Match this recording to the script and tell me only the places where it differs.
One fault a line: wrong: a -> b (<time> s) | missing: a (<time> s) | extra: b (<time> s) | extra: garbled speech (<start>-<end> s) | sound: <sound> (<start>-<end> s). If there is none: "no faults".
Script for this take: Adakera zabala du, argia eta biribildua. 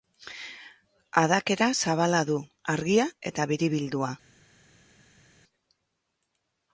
no faults